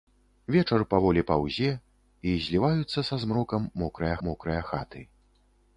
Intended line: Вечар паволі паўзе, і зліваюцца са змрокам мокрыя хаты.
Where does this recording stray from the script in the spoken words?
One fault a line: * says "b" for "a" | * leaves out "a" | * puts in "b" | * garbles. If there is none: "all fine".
* puts in "мокрыя"